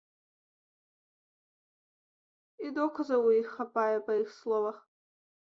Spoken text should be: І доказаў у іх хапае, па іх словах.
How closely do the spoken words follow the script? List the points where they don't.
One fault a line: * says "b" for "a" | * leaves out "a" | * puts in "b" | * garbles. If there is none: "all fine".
all fine